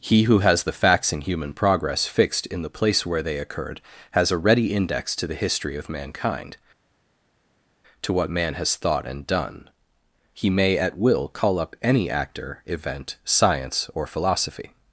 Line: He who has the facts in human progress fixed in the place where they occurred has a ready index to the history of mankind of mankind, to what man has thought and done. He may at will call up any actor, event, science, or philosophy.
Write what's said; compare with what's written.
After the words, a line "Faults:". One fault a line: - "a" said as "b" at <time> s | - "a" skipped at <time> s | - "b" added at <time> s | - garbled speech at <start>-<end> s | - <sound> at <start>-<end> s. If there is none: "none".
He who has the facts in human progress fixed in the place where they occurred has a ready index to the history of mankind, to what man has thought and done. He may at will call up any actor, event, science, or philosophy.
Faults:
- "of mankind" skipped at 6.6 s